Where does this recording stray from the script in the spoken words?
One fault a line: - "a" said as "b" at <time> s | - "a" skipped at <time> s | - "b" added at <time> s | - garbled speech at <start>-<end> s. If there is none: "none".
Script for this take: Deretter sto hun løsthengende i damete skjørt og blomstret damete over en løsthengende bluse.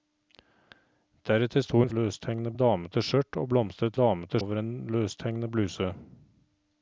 none